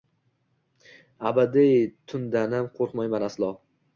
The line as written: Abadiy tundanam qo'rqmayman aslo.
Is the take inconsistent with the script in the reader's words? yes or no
no